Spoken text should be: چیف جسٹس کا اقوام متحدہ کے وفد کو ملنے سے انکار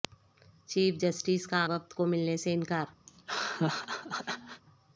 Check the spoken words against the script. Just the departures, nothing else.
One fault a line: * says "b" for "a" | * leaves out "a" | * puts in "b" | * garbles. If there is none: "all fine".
* leaves out "اقوام متحدہ کے"